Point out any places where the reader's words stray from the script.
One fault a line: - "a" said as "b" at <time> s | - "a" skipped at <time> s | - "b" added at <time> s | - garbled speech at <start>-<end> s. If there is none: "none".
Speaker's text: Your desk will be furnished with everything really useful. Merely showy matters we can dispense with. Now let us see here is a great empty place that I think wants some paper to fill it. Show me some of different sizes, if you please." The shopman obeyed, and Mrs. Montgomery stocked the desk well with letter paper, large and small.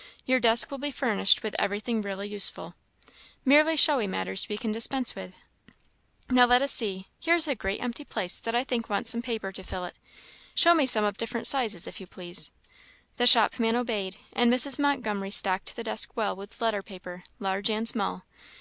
none